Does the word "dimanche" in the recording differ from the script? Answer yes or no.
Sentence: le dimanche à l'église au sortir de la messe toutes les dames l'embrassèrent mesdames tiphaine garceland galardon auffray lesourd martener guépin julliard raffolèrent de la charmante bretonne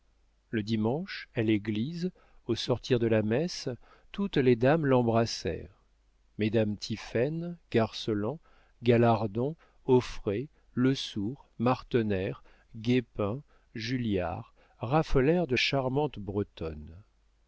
no